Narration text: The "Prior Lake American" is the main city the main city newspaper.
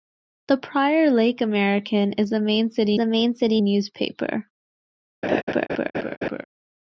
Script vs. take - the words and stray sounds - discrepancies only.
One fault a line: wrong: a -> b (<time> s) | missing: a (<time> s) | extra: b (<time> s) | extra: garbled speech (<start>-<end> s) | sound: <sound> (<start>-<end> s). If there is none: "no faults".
sound: laugh (5.2-6.4 s)